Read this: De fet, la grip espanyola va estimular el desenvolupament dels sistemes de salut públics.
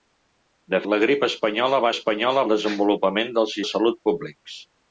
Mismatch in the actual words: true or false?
true